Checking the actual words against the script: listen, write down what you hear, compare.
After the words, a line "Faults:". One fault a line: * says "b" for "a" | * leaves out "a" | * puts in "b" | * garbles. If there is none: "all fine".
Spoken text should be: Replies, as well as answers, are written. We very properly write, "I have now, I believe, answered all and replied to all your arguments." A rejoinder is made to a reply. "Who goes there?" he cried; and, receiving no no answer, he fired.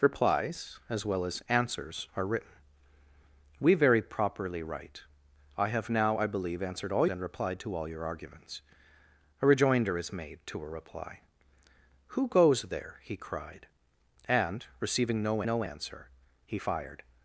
Replies, as well as answers, are written. We very properly write, "I have now, I believe, answered all and replied to all your arguments." A rejoinder is made to a reply. "Who goes there?" he cried; and, receiving no no answer, he fired.
Faults:
all fine